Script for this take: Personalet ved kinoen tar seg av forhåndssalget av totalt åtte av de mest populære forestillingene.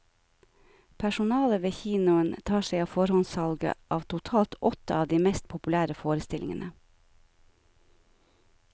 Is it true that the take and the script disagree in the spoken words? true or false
false